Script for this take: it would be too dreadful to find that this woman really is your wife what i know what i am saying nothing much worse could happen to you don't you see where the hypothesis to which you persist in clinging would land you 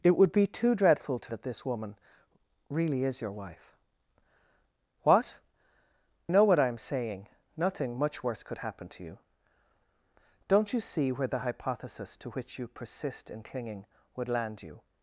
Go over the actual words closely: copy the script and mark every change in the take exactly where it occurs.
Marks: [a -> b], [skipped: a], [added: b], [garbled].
it would be too dreadful to [skipped: find] that this woman really is your wife what [skipped: i] know what i am saying nothing much worse could happen to you don't you see where the hypothesis to which you persist in clinging would land you